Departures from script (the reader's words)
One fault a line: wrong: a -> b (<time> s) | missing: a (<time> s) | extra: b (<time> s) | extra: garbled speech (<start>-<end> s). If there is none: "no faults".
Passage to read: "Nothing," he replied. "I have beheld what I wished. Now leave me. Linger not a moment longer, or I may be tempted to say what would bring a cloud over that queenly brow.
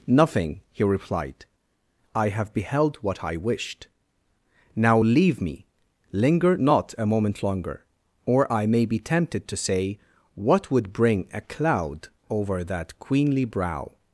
no faults